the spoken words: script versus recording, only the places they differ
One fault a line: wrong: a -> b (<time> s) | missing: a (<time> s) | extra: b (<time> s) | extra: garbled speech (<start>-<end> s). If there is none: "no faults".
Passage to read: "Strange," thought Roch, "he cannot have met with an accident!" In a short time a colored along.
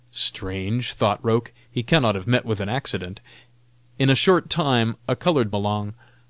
no faults